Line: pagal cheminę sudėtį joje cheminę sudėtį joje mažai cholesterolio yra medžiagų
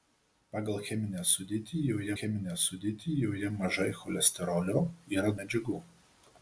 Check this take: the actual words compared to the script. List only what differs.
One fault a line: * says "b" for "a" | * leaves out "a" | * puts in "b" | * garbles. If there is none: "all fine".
all fine